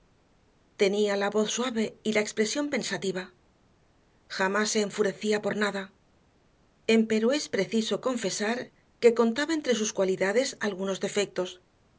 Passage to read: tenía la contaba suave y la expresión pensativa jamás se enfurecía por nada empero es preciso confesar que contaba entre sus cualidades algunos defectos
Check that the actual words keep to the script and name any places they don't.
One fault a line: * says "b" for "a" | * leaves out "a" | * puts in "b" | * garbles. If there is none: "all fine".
* says "voz" for "contaba"